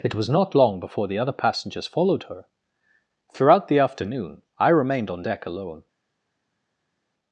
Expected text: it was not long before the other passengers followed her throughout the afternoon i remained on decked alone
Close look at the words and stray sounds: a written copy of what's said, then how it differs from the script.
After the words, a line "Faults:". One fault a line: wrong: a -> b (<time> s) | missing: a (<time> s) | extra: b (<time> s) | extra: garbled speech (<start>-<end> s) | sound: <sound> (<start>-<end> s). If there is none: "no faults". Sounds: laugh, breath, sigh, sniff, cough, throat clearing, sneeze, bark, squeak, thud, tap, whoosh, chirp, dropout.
it was not long before the other passengers followed her throughout the afternoon i remained on deck alone
Faults:
wrong: decked -> deck (5.2 s)